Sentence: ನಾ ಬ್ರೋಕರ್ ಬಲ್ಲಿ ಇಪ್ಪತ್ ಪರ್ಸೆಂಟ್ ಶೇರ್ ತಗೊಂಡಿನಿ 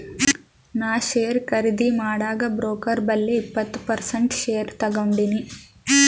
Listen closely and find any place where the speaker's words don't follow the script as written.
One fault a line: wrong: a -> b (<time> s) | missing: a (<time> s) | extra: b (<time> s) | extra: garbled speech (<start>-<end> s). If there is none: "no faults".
extra: ಶೇರ್ ಖರ್ದಿ ಮಾಡಾಗ್ (1.1 s)